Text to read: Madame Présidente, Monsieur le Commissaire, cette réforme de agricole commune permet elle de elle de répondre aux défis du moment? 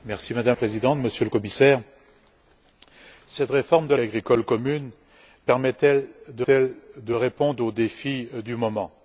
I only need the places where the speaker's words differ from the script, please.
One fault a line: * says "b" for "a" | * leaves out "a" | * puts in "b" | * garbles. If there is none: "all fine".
all fine